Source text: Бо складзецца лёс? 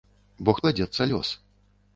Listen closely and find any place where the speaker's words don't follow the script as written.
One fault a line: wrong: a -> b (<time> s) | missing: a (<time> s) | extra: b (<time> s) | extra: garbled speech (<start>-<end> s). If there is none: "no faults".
no faults